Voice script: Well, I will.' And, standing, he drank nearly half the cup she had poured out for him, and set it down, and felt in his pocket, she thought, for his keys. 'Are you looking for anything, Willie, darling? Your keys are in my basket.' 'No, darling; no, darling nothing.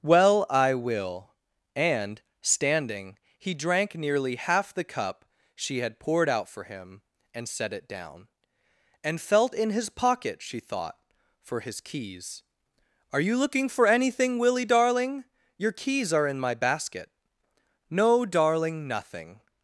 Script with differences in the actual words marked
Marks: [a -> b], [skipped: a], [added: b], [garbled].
Well, I will.' And, standing, he drank nearly half the cup she had poured out for him, and set it down, and felt in his pocket, she thought, for his keys. 'Are you looking for anything, Willie, darling? Your keys are in my basket.' 'No, darling; [skipped: no, darling] nothing.